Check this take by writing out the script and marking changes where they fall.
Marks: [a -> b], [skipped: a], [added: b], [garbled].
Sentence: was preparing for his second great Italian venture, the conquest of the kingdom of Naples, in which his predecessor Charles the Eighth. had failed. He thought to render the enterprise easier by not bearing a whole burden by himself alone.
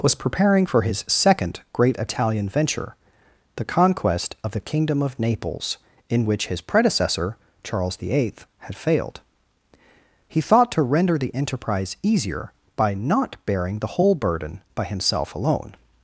was preparing for his second great Italian venture, the conquest of the kingdom of Naples, in which his predecessor Charles the Eighth. had failed. He thought to render the enterprise easier by not bearing [a -> the] whole burden by himself alone.